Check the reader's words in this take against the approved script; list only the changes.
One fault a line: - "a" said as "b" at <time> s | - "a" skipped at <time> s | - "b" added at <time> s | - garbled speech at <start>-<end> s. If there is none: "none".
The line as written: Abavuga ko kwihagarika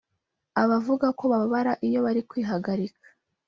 - "bababara iyo bari" added at 1.3 s